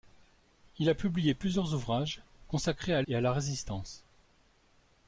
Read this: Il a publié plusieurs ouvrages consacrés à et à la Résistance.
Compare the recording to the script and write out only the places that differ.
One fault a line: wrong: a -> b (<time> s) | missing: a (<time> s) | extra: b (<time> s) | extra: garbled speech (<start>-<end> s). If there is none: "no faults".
no faults